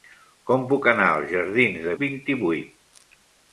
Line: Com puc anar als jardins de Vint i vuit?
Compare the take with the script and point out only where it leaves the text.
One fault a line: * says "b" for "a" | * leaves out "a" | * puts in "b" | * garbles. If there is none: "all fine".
all fine